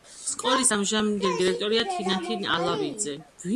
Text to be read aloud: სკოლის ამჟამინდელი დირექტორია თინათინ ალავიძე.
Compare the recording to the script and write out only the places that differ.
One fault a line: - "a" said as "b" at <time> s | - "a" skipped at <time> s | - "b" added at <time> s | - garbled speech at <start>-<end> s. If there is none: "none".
none